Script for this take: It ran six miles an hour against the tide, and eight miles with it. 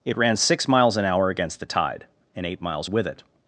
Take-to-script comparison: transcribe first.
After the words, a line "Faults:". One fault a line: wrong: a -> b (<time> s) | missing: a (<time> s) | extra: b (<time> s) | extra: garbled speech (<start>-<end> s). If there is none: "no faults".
It ran six miles an hour against the tide, and eight miles with it.
Faults:
no faults